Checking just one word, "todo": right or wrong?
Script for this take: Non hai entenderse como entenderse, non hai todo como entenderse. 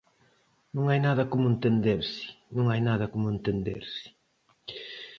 wrong